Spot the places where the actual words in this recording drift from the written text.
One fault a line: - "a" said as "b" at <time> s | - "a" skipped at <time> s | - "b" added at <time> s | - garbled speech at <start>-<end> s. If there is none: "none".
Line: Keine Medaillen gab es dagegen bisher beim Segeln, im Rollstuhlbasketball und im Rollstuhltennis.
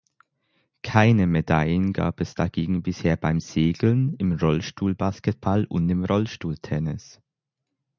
none